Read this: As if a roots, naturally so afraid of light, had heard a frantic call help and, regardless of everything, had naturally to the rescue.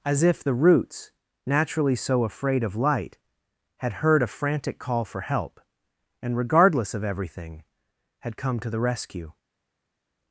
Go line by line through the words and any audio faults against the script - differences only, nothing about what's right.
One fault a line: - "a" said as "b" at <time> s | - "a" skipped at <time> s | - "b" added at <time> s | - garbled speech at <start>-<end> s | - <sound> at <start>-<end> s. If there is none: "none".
- "a" said as "the" at 0.4 s
- "for" added at 5.0 s
- "naturally" said as "come" at 8.4 s